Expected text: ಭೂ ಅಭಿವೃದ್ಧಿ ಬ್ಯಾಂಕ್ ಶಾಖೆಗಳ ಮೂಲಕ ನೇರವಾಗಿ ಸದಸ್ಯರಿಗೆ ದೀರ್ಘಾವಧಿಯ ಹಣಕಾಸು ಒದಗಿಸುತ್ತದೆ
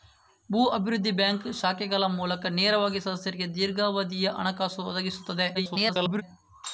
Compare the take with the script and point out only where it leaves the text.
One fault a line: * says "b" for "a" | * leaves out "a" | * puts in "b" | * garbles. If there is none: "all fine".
* garbles